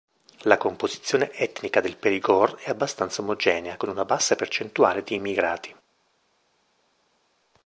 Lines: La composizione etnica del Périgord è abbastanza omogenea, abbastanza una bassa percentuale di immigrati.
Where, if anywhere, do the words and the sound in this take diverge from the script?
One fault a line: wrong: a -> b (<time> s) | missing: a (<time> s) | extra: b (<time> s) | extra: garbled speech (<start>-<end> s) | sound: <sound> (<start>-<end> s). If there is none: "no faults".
wrong: abbastanza -> con (3.8 s)